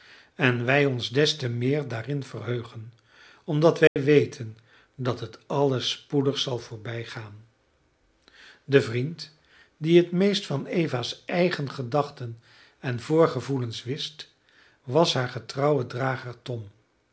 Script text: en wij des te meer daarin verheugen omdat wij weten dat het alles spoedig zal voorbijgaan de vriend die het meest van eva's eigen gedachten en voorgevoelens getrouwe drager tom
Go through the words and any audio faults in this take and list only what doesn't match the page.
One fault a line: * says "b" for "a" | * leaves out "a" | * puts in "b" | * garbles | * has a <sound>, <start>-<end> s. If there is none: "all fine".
* puts in "ons"
* has a dropout, 3.9-4.0 s
* puts in "wist was haar"